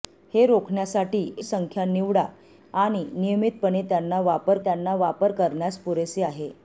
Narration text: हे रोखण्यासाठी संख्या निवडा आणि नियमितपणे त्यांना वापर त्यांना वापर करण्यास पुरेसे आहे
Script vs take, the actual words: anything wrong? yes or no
no